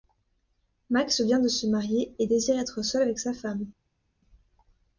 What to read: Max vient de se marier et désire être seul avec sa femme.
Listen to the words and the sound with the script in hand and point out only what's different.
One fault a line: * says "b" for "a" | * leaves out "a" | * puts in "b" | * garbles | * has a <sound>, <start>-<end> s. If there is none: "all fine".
all fine